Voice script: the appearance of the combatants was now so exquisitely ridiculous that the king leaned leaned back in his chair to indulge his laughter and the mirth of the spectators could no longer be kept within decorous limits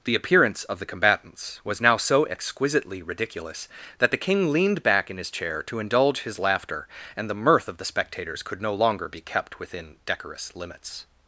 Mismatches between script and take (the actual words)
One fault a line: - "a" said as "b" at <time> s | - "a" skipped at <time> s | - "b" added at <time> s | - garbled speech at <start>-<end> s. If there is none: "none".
- "leaned" skipped at 4.8 s